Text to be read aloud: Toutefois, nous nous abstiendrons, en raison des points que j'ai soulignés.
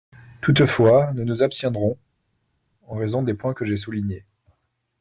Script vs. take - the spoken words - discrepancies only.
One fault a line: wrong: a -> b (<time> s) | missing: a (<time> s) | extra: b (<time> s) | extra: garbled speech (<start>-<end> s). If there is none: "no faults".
no faults